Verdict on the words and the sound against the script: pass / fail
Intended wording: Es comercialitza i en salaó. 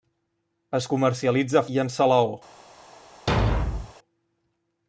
fail